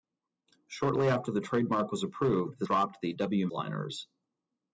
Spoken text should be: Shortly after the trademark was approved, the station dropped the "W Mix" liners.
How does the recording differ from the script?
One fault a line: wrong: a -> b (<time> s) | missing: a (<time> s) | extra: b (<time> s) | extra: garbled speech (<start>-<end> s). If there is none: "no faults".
missing: station (2.6 s)
missing: Mix (3.5 s)